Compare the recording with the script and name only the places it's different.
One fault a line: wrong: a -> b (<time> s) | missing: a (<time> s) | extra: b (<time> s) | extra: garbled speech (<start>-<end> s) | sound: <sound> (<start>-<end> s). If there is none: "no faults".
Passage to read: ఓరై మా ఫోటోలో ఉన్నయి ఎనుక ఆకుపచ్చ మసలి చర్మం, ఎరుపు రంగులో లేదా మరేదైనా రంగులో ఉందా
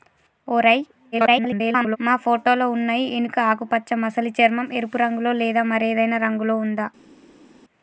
extra: garbled speech (1.1-2.0 s)